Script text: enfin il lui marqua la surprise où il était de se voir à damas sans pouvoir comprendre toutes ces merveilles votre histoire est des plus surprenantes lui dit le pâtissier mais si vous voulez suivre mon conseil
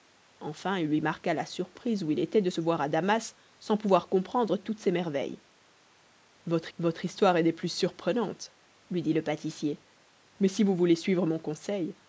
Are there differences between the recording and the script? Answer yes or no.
yes